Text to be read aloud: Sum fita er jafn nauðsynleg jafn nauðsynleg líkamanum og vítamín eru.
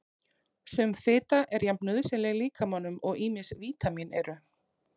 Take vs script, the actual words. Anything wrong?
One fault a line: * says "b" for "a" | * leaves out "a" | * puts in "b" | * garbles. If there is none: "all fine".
* leaves out "jafn nauðsynleg"
* puts in "ýmis"